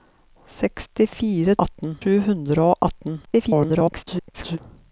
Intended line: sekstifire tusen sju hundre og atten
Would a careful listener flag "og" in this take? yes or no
no